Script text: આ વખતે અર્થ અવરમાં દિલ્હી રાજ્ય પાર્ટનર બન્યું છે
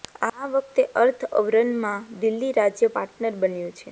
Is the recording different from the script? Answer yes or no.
no